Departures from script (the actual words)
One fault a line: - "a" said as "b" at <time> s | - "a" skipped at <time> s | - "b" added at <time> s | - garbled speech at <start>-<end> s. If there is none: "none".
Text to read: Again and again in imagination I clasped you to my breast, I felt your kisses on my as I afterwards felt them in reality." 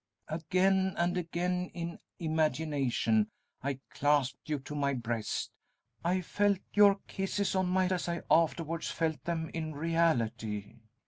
none